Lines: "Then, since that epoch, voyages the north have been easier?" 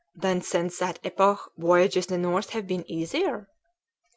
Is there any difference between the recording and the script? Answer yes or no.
no